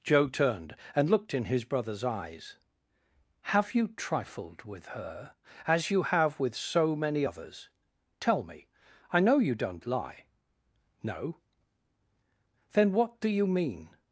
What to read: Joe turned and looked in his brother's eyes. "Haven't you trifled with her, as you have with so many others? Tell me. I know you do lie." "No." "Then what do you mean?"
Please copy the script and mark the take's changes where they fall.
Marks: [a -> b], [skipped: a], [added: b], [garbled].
Joe turned and looked in his brother's eyes. ["Haven't -> Have] you trifled with her, as you have with so many others? Tell me. I know you [do -> don't] lie." "No." "Then what do you mean?"